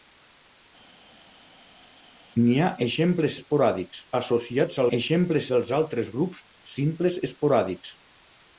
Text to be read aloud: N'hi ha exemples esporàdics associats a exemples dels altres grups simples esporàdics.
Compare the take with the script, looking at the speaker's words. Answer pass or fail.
pass